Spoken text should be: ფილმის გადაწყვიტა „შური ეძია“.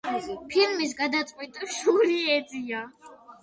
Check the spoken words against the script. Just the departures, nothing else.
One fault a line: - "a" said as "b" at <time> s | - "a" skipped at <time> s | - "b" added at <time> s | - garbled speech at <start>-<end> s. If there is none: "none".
none